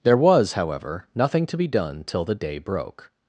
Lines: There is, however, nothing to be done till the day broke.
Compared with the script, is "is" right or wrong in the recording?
wrong